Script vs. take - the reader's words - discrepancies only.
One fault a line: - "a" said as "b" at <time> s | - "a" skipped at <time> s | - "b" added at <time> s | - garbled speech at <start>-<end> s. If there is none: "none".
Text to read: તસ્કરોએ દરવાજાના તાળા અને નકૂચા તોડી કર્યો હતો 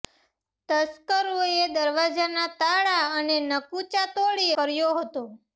none